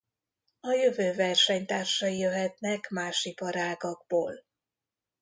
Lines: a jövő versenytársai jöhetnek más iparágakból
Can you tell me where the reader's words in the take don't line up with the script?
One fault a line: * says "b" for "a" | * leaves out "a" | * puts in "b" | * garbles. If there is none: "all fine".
all fine